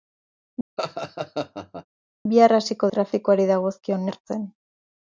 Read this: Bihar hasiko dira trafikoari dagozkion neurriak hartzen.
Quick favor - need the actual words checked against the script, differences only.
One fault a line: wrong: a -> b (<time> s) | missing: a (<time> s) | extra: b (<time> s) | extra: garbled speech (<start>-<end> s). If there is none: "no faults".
missing: dira (2.9 s)
missing: neurriak (4.1 s)